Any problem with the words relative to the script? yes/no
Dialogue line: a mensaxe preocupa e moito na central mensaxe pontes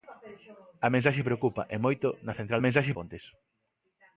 no